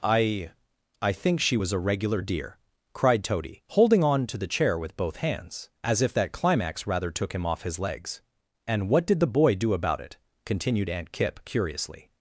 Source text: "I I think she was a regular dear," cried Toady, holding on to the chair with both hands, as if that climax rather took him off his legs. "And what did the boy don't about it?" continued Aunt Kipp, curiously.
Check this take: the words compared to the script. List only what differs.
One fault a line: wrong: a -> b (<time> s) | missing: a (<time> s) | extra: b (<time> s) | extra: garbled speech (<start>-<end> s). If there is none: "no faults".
wrong: don't -> do (9.5 s)